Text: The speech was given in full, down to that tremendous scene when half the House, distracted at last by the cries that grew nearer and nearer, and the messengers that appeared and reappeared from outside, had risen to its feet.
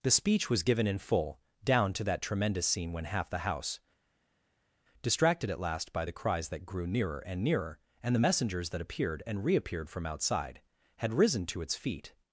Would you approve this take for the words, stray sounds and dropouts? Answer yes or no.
yes